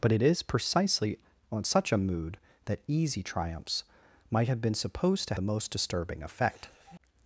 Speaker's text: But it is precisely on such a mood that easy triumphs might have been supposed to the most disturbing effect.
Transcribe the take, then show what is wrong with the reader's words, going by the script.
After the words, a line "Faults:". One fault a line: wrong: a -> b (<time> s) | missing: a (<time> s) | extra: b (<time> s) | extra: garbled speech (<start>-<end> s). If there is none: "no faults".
But it is precisely on such a mood that easy triumphs might have been supposed to the most disturbing effect.
Faults:
no faults